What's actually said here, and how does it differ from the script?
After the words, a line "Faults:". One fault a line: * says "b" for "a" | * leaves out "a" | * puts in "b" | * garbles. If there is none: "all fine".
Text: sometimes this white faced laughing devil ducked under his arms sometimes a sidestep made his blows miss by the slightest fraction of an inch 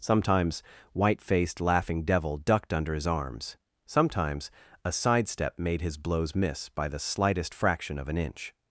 sometimes white faced laughing devil ducked under his arms sometimes a sidestep made his blows miss by the slightest fraction of an inch
Faults:
* leaves out "this"